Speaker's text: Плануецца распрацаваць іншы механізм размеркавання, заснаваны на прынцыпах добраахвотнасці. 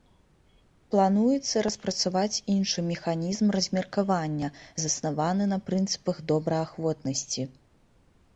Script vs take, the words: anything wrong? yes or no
no